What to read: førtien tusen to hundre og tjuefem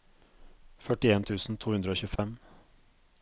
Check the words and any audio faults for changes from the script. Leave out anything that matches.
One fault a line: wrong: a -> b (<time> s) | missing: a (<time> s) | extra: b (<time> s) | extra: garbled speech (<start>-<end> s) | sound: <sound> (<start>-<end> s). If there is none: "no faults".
sound: dropout (2.2-2.2 s)